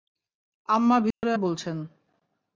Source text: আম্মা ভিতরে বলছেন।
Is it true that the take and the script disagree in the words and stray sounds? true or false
true